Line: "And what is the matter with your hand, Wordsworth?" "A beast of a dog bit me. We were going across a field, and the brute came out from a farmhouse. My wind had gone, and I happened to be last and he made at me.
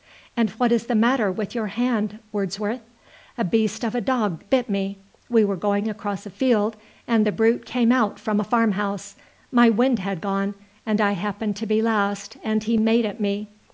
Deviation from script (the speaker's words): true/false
false